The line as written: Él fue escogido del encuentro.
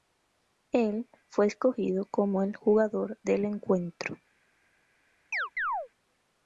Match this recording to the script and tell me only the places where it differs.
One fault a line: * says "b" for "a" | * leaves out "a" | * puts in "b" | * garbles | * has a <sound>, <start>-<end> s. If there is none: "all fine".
* puts in "como el jugador"
* has a chirp, 5.3-5.9 s